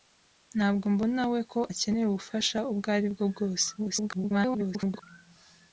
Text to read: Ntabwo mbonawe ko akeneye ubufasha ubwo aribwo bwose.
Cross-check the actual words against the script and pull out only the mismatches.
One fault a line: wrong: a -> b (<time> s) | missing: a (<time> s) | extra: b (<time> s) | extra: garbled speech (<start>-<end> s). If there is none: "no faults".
extra: garbled speech (3.8-5.0 s)